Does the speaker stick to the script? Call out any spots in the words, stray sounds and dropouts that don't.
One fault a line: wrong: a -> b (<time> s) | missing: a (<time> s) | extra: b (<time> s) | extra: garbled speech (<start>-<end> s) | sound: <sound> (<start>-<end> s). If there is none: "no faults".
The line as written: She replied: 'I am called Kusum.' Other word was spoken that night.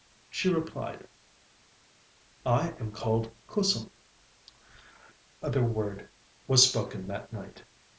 no faults